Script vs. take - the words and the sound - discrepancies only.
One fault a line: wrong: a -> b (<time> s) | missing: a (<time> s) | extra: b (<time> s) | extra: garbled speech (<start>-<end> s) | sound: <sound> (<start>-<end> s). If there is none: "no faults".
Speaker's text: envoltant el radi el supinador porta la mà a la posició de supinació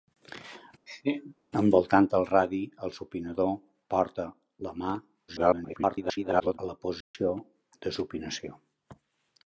sound: laugh (0.9-1.4 s)
extra: garbled speech (5.3-6.6 s)
sound: dropout (7.0-7.1 s)